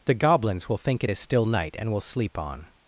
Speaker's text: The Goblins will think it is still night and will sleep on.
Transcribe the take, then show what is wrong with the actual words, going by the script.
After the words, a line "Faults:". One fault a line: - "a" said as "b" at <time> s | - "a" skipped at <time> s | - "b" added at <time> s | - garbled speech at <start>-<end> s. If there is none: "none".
The Goblins will think it is still night and will sleep on.
Faults:
none